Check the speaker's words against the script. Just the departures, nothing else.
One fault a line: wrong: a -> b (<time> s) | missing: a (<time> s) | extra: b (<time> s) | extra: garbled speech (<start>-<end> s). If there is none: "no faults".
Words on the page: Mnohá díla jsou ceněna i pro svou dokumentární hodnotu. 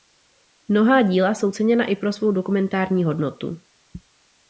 no faults